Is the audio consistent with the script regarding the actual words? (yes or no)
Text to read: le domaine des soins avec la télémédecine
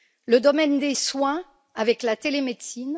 yes